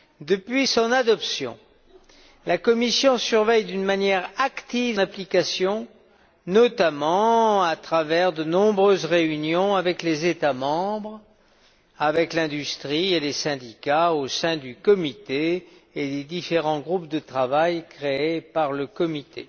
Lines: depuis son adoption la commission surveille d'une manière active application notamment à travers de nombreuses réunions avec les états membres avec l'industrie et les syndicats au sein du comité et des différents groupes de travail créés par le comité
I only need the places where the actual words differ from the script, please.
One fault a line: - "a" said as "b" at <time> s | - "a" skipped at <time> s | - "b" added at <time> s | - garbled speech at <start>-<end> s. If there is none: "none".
none